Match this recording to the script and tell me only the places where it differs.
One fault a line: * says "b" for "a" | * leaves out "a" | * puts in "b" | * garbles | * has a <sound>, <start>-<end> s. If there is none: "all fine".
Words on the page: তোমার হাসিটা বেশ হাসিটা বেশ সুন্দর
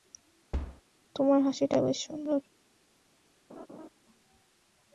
* has a thud, 0.5-0.8 s
* leaves out "হাসিটা বেশ"
* has a laugh, 3.5-3.9 s